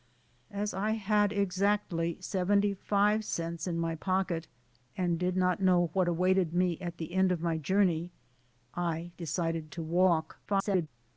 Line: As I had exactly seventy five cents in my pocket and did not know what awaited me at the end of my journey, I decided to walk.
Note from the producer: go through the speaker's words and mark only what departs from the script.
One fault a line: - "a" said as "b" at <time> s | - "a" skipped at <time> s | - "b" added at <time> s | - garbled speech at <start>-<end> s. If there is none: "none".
- garbled speech at 10.5-10.9 s